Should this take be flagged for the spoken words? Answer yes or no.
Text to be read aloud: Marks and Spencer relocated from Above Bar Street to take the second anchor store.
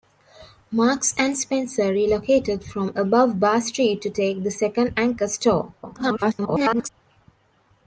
yes